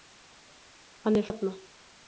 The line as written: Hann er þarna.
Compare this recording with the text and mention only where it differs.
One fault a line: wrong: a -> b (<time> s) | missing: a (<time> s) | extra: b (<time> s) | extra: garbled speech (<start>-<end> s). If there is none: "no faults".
no faults